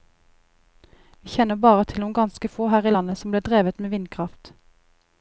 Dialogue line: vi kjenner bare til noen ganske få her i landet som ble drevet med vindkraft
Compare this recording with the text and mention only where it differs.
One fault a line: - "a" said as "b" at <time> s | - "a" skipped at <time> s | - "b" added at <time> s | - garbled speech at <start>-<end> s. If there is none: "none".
none